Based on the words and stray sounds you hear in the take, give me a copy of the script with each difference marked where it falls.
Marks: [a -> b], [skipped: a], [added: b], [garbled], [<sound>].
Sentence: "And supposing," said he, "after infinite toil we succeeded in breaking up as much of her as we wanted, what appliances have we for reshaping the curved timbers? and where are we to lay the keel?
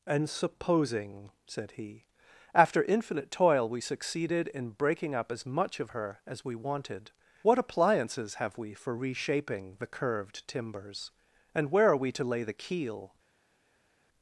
"And supposing," said he, "after infinite toil we succeeded in breaking up as much of her as we wanted, what appliances have we for reshaping the curved timbers? and where are we to lay the keel?